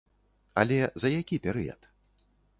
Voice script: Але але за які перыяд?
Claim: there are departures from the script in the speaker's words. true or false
true